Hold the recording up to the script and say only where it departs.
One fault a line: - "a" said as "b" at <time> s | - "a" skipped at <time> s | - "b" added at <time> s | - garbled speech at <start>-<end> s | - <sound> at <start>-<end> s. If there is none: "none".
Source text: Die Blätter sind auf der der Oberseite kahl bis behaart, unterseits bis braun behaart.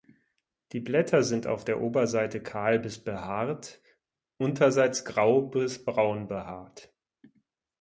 - "der" skipped at 1.8 s
- "grau" added at 5.0 s